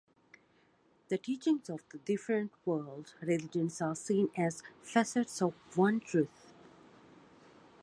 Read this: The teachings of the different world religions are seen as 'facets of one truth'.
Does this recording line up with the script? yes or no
yes